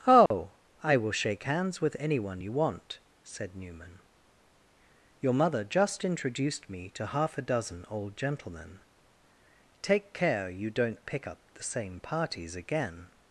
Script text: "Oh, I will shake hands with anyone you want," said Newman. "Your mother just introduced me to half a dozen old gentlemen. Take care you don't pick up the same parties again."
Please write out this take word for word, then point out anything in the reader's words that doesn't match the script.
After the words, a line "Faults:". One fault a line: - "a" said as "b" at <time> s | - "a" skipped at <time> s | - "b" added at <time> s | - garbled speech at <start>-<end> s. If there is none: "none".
"Oh, I will shake hands with anyone you want," said Newman. "Your mother just introduced me to half a dozen old gentlemen. Take care you don't pick up the same parties again."
Faults:
none